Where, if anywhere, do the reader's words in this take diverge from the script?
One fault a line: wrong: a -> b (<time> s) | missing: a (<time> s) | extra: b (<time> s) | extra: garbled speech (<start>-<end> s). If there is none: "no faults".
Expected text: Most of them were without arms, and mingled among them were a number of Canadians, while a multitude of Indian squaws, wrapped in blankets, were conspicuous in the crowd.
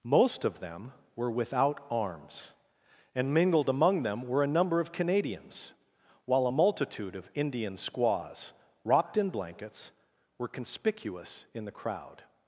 no faults